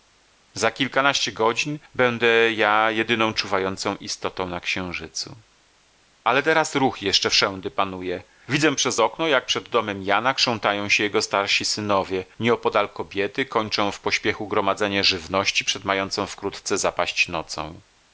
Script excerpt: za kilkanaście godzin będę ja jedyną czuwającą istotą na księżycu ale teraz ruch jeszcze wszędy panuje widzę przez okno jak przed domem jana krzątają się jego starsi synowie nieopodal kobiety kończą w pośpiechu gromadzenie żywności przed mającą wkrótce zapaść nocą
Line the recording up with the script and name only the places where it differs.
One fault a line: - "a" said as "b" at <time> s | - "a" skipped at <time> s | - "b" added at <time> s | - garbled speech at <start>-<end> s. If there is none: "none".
none